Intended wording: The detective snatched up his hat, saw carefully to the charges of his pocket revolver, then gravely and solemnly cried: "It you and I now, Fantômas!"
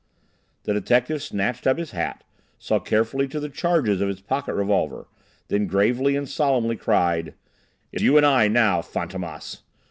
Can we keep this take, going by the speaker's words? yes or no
yes